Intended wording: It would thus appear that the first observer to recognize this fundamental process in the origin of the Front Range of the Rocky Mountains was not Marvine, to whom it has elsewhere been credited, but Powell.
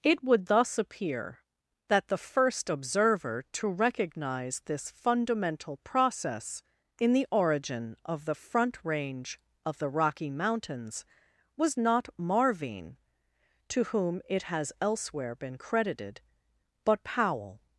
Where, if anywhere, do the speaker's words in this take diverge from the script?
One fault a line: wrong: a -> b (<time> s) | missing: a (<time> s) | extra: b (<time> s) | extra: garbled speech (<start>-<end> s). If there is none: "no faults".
no faults